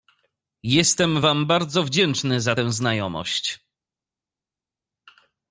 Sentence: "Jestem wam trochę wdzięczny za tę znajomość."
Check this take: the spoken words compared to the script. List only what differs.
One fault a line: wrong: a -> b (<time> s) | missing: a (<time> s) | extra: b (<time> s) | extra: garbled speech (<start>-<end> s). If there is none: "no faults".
wrong: trochę -> bardzo (1.4 s)